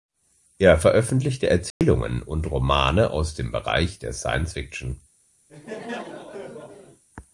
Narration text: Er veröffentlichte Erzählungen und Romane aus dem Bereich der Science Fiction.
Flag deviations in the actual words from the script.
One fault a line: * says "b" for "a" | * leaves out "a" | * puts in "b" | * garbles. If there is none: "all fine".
all fine